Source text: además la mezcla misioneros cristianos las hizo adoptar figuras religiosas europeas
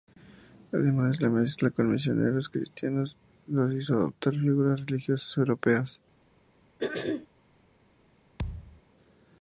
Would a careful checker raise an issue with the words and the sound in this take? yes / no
yes